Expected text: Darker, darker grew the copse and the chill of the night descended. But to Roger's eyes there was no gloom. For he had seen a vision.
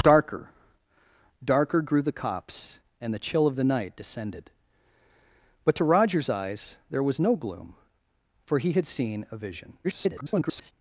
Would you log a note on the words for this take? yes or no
yes